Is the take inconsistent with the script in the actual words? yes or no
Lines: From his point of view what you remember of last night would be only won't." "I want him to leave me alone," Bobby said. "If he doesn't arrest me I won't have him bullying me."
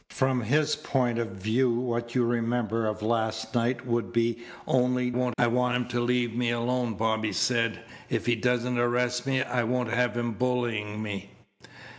no